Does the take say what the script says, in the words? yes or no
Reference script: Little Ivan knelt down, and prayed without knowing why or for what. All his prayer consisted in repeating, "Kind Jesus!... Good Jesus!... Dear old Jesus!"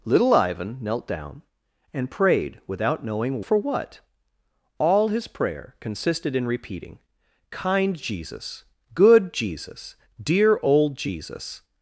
no